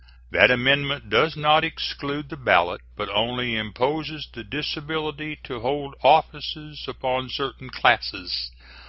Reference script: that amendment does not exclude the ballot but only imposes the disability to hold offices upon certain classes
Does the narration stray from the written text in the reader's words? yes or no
no